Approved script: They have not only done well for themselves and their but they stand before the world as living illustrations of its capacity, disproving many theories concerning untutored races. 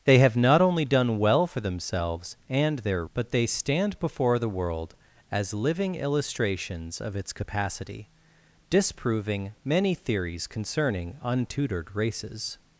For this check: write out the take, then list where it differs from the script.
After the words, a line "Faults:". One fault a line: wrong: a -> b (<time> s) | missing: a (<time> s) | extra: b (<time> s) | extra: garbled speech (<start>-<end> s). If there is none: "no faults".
They have not only done well for themselves and their but they stand before the world as living illustrations of its capacity, disproving many theories concerning untutored races.
Faults:
no faults